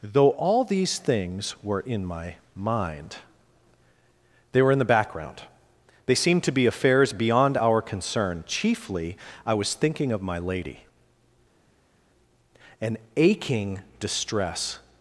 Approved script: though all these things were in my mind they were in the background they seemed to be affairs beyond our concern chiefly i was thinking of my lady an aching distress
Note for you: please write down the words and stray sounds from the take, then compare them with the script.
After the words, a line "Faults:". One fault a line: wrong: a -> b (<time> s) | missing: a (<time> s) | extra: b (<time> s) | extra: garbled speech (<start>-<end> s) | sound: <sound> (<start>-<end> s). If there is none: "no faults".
though all these things were in my mind they were in the background they seemed to be affairs beyond our concern chiefly i was thinking of my lady an aching distress
Faults:
no faults